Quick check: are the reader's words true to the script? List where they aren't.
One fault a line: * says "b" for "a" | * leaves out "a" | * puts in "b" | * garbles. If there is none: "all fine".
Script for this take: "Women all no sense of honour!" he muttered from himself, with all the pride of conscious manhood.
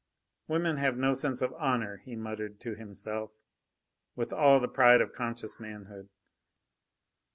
* says "have" for "all"
* says "to" for "from"